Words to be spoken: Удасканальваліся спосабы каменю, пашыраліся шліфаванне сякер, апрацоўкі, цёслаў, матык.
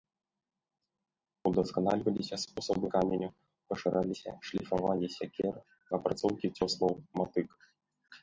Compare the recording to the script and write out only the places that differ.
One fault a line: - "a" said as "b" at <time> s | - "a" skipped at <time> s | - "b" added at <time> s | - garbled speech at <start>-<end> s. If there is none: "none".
none